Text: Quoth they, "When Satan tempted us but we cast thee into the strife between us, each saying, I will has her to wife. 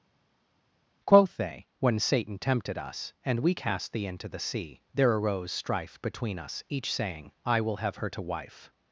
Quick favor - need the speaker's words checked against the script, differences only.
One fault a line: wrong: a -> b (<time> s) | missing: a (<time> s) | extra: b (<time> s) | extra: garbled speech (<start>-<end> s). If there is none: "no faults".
wrong: but -> and (3.2 s)
extra: sea there arose (4.4 s)
wrong: has -> have (7.8 s)